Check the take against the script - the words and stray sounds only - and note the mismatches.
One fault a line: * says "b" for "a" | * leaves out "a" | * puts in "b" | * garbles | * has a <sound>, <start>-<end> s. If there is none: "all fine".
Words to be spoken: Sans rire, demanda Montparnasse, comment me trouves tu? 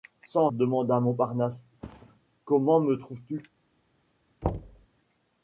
* leaves out "rire"
* has a thud, 1.8-2.2 s
* has a thud, 4.4-4.9 s